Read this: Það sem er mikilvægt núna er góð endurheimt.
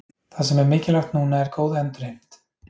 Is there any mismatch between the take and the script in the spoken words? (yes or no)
no